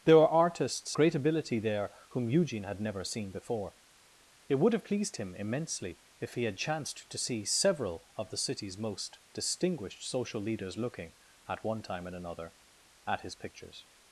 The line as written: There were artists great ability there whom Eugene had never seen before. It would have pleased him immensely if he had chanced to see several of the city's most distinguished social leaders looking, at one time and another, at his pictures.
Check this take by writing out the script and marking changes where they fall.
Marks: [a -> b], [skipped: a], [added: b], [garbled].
There were artists great ability there whom Eugene had never seen before. It would have pleased him immensely if he had chanced to see several of the city's most distinguished social leaders looking, at one time and another, at his pictures.